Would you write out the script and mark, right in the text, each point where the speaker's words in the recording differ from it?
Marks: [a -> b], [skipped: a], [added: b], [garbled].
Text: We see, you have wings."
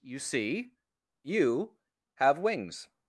[We -> You] see, you have wings."